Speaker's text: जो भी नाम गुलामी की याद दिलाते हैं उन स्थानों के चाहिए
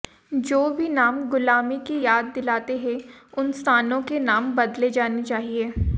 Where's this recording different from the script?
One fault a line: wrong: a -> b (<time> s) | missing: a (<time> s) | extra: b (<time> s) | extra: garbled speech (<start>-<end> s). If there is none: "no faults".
extra: नाम बदले जाने (4.2 s)